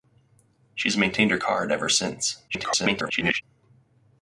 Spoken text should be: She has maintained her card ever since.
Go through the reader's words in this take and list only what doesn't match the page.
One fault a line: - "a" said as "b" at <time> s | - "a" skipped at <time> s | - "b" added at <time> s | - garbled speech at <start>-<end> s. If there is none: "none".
- garbled speech at 2.5-3.4 s